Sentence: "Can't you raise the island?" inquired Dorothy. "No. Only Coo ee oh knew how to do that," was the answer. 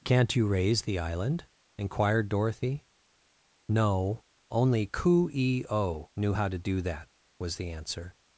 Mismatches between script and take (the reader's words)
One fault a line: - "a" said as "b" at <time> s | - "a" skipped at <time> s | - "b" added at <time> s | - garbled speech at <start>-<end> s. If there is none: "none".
none